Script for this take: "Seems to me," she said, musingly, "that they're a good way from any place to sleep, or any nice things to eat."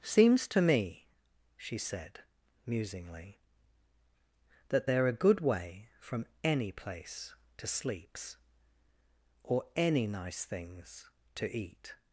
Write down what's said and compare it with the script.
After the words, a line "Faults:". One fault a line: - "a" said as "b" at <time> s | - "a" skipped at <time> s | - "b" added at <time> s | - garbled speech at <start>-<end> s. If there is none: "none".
"Seems to me," she said, musingly, "that they're a good way from any place to sleeps, or any nice things to eat."
Faults:
- "sleep" said as "sleeps" at 7.7 s